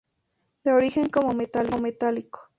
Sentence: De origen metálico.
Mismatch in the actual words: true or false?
true